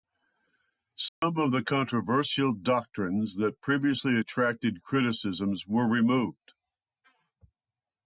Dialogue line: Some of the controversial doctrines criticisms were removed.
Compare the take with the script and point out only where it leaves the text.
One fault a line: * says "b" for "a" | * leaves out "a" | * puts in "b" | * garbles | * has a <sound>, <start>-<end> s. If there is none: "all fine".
* has a dropout, 1.1-1.2 s
* puts in "that previously attracted"